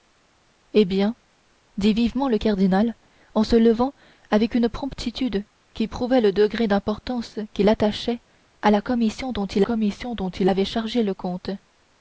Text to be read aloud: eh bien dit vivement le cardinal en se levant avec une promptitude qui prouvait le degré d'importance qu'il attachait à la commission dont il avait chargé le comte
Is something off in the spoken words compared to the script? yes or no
yes